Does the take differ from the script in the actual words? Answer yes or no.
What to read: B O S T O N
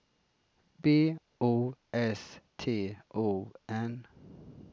no